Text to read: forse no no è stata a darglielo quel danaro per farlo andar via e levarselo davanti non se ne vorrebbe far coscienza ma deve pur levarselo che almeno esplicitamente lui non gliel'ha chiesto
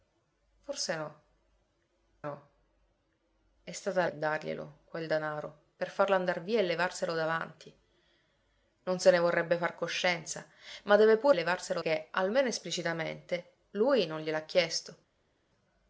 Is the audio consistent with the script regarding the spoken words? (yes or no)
yes